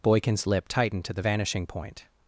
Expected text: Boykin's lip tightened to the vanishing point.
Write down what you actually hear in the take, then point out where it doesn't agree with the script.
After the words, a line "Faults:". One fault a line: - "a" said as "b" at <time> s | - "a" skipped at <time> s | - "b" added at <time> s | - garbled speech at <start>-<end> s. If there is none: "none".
Boykin's lip tightened to the vanishing point.
Faults:
none